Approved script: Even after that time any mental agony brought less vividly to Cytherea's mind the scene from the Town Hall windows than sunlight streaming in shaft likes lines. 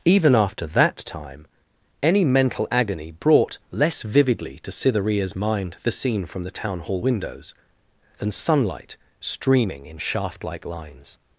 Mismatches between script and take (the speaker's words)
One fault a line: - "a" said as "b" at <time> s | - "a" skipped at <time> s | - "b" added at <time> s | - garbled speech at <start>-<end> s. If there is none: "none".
- "likes" said as "like" at 10.4 s